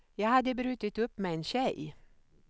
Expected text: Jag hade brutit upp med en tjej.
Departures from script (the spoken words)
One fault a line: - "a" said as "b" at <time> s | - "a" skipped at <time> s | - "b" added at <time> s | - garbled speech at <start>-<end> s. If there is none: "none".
none